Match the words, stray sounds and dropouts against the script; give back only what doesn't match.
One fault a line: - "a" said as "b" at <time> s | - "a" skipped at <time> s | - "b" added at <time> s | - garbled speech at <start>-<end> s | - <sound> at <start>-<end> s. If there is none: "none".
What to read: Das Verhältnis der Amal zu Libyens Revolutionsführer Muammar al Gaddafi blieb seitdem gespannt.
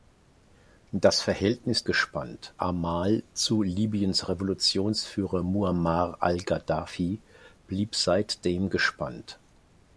- "der" said as "gespannt" at 1.8 s